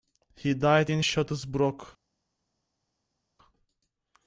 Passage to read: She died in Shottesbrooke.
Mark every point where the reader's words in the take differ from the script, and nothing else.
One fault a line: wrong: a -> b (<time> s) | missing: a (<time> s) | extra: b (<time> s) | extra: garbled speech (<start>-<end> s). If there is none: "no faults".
wrong: She -> He (0.3 s)